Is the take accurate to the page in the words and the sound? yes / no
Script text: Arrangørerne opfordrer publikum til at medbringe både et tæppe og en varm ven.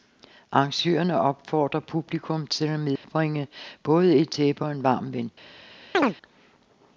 no